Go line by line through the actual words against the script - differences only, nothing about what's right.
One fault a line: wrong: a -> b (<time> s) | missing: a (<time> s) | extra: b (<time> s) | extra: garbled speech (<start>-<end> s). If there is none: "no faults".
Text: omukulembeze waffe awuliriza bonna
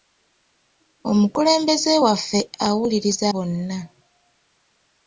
no faults